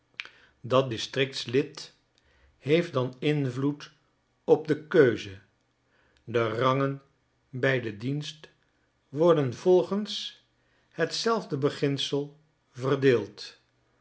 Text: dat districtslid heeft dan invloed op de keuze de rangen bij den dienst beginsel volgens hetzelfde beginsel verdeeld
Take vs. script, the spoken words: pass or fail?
fail